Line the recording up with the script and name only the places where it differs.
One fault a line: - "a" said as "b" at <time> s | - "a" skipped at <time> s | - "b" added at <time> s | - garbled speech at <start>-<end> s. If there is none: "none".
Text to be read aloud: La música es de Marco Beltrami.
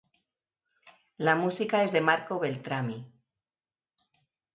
none